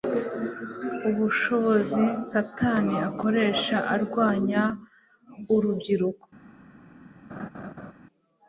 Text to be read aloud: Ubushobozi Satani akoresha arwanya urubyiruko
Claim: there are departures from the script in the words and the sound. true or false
true